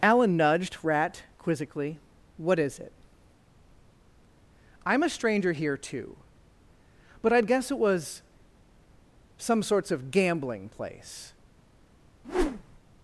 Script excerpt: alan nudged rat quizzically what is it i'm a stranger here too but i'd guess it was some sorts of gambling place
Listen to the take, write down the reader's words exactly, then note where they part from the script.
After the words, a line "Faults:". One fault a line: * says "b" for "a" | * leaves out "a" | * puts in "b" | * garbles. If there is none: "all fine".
alan nudged rat quizzically what is it i'm a stranger here too but i'd guess it was some sorts of gambling place
Faults:
all fine